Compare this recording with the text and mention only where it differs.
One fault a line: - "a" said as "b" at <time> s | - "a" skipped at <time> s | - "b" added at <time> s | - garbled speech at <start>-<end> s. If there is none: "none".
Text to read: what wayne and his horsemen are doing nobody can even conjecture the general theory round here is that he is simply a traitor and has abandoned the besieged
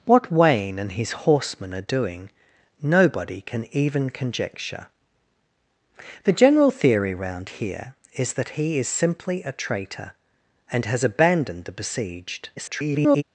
- garbled speech at 12.6-13.2 s